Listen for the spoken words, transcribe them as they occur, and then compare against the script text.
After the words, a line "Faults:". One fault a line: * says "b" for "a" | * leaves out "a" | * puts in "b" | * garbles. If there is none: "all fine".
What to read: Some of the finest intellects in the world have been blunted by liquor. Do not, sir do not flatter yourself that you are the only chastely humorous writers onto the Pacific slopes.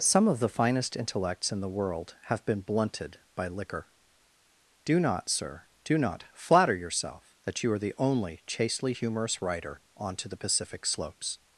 Some of the finest intellects in the world have been blunted by liquor. Do not, sir do not flatter yourself that you are the only chastely humorous writer onto the Pacific slopes.
Faults:
* says "writer" for "writers"